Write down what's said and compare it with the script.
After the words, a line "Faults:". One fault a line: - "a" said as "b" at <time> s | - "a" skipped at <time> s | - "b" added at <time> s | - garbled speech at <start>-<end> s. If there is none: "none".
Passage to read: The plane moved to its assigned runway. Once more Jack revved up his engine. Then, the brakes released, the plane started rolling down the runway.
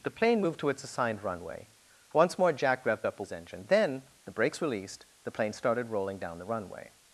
The plane moved to its assigned runway. Once more Jack revved up his engine. Then, the brakes released, the plane started rolling down the runway.
Faults:
none